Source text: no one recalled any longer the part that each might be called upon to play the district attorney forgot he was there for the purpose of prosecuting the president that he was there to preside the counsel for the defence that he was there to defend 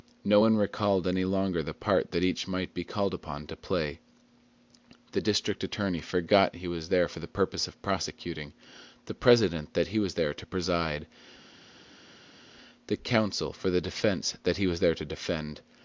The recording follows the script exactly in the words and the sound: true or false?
true